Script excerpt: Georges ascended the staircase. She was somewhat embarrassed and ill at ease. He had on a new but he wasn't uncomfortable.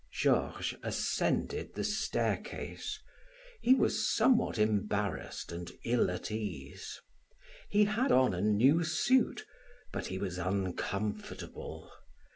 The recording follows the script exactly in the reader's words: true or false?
false